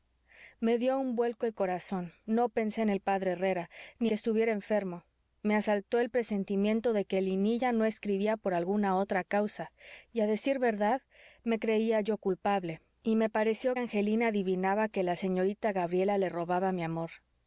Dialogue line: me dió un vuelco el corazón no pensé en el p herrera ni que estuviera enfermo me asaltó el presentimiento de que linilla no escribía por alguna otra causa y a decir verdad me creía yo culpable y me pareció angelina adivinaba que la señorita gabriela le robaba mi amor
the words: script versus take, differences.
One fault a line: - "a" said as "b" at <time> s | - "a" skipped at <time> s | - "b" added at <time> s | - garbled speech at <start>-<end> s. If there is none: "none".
none